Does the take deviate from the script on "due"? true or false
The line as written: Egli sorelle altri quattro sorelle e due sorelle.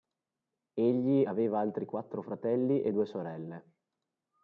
false